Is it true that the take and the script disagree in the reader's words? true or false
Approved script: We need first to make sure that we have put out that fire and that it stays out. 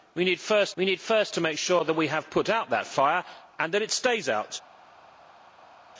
true